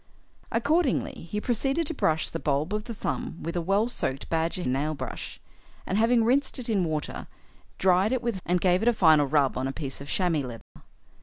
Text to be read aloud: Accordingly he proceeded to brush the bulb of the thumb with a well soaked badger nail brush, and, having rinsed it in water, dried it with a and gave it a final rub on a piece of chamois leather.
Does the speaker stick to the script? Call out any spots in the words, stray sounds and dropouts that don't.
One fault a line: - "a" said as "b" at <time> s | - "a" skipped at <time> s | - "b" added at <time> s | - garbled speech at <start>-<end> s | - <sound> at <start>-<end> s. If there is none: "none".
- dropout at 10.6-10.8 s